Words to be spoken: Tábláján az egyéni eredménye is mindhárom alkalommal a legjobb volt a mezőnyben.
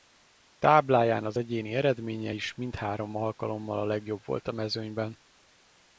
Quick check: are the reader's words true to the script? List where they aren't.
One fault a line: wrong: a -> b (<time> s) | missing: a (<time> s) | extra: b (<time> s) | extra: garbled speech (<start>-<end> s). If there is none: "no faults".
no faults